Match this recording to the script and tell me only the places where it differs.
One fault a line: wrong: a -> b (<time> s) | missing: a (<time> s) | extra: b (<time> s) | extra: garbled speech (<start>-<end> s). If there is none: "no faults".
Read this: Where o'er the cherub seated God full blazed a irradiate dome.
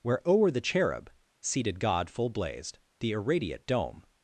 wrong: a -> the (3.0 s)